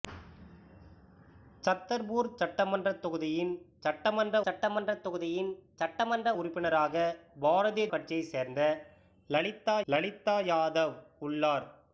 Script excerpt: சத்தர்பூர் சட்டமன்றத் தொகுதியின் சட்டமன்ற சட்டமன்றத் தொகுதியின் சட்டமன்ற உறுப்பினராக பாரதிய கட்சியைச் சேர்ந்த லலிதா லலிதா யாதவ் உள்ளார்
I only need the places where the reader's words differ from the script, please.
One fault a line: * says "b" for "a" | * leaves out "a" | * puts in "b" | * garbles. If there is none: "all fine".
all fine